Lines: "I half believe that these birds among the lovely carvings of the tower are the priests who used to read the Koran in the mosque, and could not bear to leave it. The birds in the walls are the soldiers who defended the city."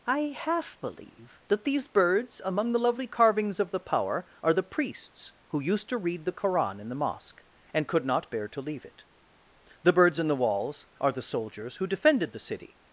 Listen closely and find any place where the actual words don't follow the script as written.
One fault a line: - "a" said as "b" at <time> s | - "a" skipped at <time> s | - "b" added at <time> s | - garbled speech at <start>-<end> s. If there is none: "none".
- "tower" said as "power" at 3.8 s